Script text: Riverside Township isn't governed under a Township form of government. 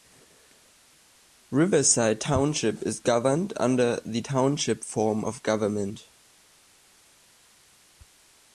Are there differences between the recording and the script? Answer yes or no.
yes